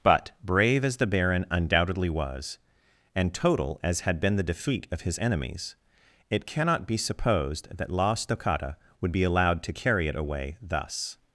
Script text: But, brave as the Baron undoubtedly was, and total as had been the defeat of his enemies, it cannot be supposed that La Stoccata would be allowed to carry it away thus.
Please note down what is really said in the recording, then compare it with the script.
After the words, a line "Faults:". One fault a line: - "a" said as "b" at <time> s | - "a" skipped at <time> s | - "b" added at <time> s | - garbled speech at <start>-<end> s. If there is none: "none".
But, brave as the Baron undoubtedly was, and total as had been the defeat of his enemies, it cannot be supposed that La Stoccata would be allowed to carry it away thus.
Faults:
none